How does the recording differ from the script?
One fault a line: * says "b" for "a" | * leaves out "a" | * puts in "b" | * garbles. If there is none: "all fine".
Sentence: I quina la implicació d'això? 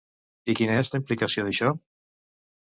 * puts in "és"